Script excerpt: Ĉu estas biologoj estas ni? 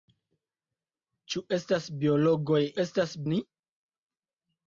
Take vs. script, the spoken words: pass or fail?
pass